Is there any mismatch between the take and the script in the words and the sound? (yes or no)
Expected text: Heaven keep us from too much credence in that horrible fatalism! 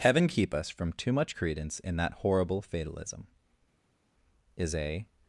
yes